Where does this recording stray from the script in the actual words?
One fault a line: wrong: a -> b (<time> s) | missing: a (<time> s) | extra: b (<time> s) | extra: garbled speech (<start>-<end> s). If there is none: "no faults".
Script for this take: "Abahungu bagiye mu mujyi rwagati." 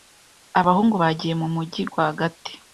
no faults